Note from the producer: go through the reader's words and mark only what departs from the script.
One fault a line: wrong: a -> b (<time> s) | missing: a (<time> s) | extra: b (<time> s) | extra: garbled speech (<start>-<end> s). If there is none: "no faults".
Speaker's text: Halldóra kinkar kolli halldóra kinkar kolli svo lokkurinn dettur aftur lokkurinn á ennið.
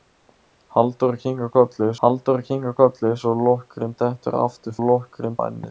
no faults